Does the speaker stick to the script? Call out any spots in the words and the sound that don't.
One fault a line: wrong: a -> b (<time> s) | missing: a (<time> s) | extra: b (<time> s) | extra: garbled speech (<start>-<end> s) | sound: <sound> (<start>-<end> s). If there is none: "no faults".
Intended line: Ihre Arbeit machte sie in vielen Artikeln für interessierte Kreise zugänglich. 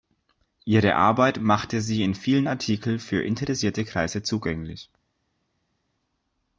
no faults